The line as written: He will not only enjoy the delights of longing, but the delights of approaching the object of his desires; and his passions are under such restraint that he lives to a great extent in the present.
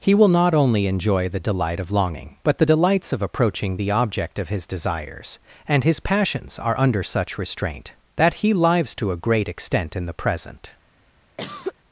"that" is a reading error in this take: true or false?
false